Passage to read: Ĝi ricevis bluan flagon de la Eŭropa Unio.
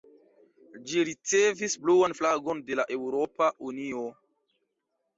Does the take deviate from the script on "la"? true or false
false